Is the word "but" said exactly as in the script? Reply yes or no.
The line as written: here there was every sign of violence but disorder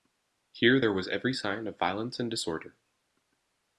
no